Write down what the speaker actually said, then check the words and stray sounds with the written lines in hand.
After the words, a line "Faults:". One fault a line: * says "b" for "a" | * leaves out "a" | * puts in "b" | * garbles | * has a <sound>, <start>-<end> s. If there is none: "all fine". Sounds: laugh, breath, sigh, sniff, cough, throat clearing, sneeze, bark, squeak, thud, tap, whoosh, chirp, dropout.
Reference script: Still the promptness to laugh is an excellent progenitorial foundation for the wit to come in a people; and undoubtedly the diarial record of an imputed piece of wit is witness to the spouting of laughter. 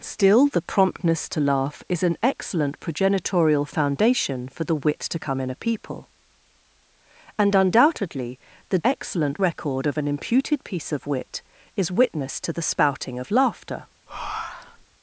Still the promptness to laugh is an excellent progenitorial foundation for the wit to come in a people; and undoubtedly the excellent record of an imputed piece of wit is witness to the spouting of laughter.
Faults:
* says "excellent" for "diarial"
* has a breath, 14.1-14.9 s